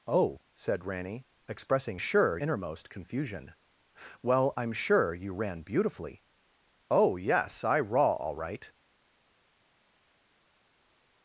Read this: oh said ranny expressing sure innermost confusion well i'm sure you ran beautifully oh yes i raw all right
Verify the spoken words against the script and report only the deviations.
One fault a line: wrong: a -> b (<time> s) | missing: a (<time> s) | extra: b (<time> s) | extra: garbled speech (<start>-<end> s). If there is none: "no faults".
no faults